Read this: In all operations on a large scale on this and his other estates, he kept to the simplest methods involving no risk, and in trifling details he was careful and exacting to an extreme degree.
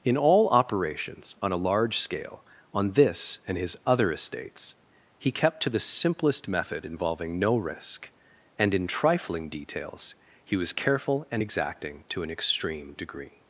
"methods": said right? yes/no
no